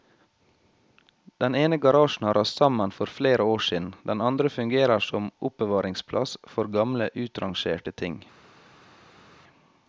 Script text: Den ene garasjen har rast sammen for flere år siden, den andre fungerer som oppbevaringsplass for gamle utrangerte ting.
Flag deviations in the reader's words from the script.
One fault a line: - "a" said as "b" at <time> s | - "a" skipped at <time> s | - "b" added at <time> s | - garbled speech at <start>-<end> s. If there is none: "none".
none